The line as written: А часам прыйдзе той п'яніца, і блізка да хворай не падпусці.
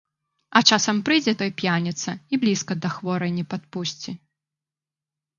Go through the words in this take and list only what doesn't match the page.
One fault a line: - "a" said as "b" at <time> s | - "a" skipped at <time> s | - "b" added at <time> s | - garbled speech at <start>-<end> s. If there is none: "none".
none